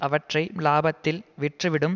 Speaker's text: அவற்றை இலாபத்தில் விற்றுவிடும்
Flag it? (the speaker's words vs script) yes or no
no